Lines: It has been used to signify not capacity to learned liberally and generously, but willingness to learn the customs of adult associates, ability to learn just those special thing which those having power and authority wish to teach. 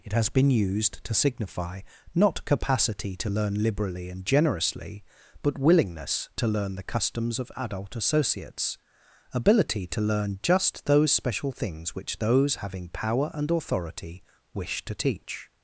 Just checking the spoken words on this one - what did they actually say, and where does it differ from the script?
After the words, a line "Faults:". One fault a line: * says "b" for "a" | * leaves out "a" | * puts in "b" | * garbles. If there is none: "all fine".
It has been used to signify not capacity to learn liberally and generously, but willingness to learn the customs of adult associates, ability to learn just those special things which those having power and authority wish to teach.
Faults:
* says "learn" for "learned"
* says "things" for "thing"